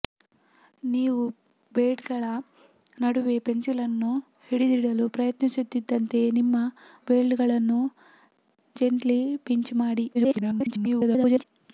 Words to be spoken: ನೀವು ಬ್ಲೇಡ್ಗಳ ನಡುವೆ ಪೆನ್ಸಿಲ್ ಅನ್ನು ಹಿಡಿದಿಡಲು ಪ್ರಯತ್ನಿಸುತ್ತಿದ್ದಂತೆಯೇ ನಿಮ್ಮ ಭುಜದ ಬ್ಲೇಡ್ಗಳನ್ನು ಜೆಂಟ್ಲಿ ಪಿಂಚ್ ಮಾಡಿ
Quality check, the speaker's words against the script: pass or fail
fail